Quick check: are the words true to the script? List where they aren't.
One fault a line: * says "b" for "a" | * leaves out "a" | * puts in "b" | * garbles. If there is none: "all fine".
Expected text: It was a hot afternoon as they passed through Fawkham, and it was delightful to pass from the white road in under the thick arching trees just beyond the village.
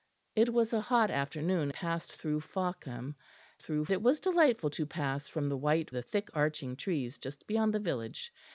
* leaves out "as they"
* says "through" for "and"
* leaves out "road in under"